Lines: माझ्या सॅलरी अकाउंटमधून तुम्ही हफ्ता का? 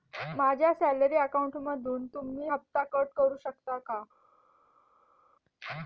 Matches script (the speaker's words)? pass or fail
fail